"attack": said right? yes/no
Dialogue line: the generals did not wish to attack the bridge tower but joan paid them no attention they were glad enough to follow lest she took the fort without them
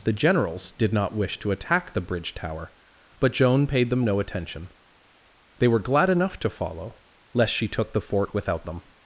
yes